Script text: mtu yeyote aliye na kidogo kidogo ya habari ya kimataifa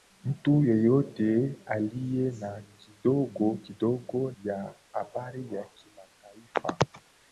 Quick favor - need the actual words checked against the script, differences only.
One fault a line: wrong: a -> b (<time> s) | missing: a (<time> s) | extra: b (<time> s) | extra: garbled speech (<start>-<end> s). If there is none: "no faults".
no faults